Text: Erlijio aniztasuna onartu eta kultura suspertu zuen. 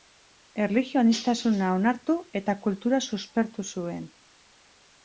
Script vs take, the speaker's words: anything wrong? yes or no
no